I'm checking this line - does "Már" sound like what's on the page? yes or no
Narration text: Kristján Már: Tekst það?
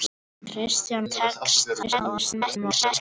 no